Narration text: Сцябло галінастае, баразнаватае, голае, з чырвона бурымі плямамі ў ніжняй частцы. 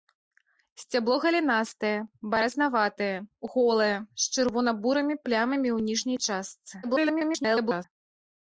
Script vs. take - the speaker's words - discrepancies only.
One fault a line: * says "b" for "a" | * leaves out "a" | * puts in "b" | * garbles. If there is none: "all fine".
* garbles